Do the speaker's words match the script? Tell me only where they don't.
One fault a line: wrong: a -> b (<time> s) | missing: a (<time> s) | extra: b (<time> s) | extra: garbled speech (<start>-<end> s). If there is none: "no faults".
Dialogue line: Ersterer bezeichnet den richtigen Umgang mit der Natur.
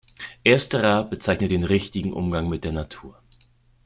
no faults